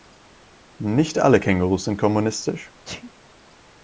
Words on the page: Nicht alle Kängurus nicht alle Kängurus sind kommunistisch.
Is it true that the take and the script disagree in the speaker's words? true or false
true